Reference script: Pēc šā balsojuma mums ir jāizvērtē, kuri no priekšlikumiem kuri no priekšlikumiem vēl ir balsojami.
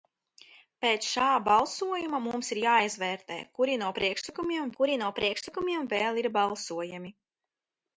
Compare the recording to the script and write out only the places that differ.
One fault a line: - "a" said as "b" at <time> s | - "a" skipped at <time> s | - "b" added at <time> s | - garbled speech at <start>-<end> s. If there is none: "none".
none